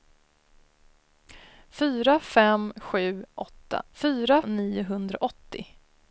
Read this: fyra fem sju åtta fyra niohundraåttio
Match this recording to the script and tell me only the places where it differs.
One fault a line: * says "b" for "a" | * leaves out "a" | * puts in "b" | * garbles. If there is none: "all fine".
all fine